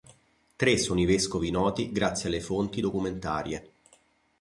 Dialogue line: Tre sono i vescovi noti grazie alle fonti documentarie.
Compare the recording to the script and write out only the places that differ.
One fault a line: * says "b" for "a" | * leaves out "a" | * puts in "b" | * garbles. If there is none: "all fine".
all fine